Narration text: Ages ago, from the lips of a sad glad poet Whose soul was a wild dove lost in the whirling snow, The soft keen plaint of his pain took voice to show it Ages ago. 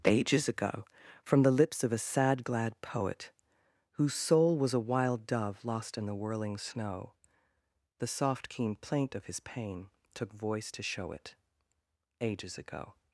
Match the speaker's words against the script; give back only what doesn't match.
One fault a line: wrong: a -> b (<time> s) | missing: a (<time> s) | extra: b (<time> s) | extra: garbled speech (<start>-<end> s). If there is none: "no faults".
no faults